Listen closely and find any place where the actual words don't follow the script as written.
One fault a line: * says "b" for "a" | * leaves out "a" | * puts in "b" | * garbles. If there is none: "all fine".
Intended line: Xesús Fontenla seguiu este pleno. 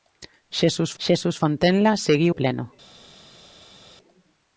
* puts in "xesús"
* leaves out "este"